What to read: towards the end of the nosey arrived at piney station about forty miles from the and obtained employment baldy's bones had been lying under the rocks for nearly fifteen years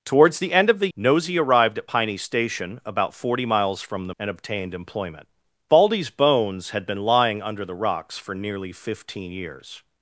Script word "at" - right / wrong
right